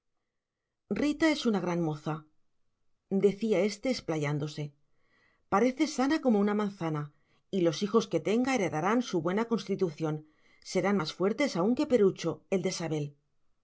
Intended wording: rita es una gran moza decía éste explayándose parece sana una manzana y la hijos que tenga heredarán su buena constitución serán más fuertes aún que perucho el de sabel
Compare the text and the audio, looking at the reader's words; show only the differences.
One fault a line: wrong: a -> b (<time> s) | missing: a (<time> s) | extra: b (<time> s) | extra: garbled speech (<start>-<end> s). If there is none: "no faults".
extra: como (6.2 s)
wrong: la -> los (7.6 s)